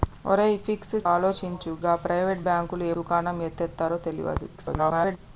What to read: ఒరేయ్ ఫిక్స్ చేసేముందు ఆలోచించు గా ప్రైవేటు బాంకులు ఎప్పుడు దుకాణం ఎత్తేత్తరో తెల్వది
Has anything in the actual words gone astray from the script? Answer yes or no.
yes